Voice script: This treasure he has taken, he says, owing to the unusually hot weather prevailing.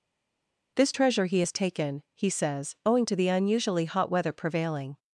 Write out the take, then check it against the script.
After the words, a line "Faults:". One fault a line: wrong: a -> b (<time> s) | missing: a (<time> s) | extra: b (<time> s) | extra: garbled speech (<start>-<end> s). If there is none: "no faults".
This treasure he has taken, he says, owing to the unusually hot weather prevailing.
Faults:
no faults